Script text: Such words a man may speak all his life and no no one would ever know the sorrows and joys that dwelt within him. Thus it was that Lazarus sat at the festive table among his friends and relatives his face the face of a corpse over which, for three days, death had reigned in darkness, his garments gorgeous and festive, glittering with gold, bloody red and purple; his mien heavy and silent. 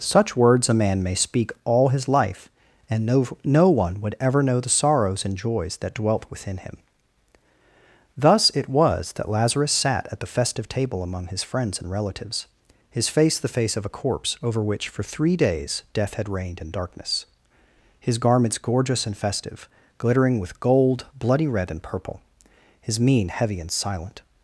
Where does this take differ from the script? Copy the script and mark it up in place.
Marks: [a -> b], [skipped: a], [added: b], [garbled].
Such words a man may speak all his life and no no one would ever know the sorrows and joys that dwelt within him. Thus it was that Lazarus sat at the festive table among his friends and relatives his face the face of a corpse over which, for three days, death had reigned in darkness, his garments gorgeous and festive, glittering with gold, bloody red and purple; his mien heavy and silent.